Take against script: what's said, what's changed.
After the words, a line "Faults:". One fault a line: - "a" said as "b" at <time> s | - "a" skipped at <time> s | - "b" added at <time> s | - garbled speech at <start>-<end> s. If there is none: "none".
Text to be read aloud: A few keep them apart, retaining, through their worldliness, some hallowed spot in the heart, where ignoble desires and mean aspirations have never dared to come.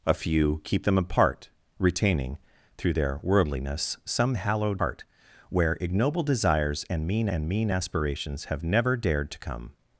A few keep them apart, retaining, through their worldliness, some hallowed heart, where ignoble desires and mean and mean aspirations have never dared to come.
Faults:
- "spot in the" skipped at 4.8 s
- "and mean" added at 7.3 s